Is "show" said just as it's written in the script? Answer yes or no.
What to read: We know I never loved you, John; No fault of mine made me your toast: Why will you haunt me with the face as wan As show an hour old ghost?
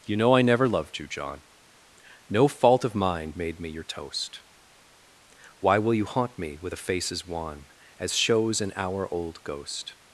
no